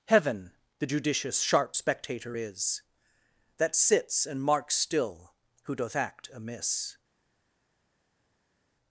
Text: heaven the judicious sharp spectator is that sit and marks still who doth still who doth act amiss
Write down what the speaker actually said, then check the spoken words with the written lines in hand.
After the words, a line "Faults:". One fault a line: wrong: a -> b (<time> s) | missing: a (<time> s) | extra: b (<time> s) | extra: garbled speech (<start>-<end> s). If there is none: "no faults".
heaven the judicious sharp spectator is that sits and marks still who doth act amiss
Faults:
wrong: sit -> sits (3.8 s)
missing: still who doth (5.9 s)